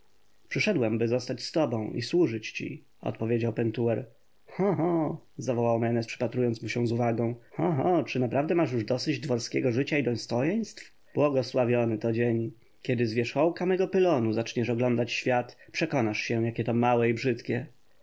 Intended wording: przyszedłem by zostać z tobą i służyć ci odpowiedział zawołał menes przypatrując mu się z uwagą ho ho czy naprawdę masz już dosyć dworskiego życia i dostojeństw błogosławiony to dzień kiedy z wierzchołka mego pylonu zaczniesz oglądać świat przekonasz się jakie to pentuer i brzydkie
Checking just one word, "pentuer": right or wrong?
wrong